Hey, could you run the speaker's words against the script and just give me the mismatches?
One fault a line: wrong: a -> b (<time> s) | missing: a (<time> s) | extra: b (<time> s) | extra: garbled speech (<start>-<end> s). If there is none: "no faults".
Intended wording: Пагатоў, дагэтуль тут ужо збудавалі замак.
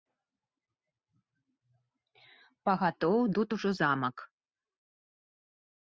missing: дагэтуль (3.2 s)
missing: збудавалі (3.7 s)